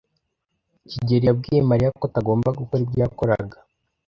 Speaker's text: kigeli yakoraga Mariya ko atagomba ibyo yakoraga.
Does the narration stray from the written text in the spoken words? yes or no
yes